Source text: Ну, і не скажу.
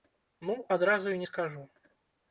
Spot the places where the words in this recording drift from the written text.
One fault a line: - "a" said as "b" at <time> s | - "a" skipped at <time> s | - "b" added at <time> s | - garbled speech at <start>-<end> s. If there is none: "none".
- "адразу" added at 0.8 s